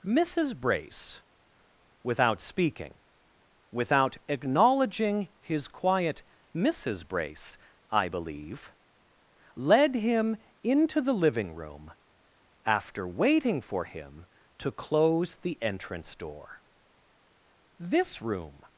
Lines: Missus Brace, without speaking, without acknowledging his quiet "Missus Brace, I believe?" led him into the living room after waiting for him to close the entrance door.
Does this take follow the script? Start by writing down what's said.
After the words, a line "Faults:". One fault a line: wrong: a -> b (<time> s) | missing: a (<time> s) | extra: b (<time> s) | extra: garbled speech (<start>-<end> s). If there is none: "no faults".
Missus Brace, without speaking, without acknowledging his quiet "Missus Brace, I believe?" led him into the living room after waiting for him to close the entrance door. This room
Faults:
extra: This room (17.8 s)